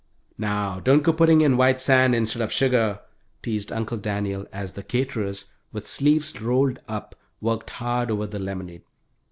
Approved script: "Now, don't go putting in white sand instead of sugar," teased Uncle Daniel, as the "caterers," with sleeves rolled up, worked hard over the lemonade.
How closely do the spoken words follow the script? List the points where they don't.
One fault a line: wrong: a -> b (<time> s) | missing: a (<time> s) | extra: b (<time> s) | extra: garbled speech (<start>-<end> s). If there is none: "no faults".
no faults